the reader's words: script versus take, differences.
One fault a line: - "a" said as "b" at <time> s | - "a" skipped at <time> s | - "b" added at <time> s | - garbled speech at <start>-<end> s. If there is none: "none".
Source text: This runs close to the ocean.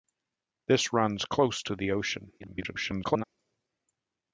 - garbled speech at 2.4-3.2 s